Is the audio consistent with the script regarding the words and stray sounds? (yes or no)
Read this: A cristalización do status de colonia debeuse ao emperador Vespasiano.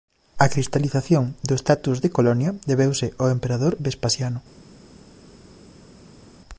yes